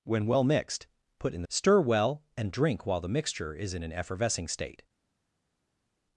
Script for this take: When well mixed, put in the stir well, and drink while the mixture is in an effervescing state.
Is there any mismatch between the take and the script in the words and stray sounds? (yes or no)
no